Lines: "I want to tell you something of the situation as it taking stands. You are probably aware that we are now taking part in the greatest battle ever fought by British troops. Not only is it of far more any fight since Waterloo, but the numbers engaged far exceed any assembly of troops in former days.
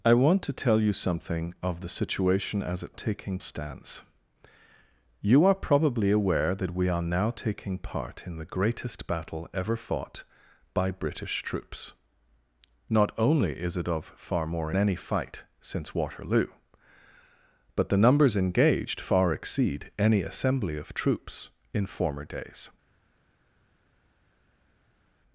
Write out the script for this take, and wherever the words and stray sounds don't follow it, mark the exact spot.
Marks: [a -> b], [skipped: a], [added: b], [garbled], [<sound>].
"I want to tell you something of the situation as it taking stands. You are probably aware that we are now taking part in the greatest battle ever fought by British troops. Not only is it of far more any fight since Waterloo, but the numbers engaged far exceed any assembly of troops in former days.